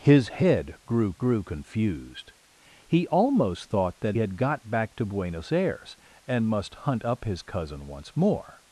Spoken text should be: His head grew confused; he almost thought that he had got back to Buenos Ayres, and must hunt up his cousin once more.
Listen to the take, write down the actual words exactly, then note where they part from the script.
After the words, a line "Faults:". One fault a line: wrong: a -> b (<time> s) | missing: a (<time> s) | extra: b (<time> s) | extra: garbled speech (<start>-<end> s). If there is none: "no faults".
His head grew grew confused; he almost thought that had got back to Buenos Ayres, and must hunt up his cousin once more.
Faults:
extra: grew (1.2 s)
missing: he (4.2 s)